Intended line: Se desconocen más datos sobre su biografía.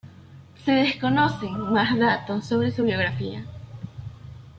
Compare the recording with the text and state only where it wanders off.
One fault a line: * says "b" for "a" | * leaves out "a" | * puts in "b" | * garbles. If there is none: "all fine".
all fine